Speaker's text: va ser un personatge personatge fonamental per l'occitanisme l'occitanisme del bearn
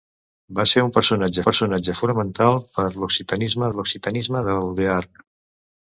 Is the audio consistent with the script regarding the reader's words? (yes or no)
yes